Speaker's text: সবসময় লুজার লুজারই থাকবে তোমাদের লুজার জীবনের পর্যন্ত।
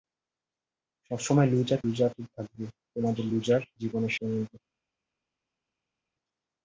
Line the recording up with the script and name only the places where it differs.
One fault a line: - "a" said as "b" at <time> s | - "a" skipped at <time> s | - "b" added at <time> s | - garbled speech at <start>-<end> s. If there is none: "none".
none